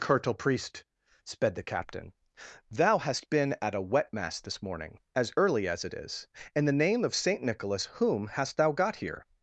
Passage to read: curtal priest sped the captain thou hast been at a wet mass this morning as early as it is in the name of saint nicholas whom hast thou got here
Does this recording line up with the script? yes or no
yes